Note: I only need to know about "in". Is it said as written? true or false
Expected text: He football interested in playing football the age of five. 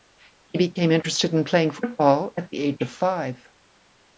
true